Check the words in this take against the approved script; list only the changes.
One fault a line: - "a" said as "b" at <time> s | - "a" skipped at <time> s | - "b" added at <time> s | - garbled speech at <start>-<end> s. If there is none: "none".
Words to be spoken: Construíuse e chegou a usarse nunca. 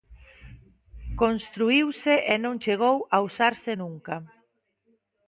- "non" added at 2.4 s